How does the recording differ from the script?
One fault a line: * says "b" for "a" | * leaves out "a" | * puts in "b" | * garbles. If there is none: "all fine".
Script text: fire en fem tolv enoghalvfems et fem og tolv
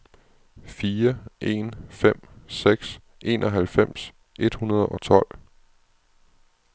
* says "seks" for "tolv"
* says "hundrede" for "fem"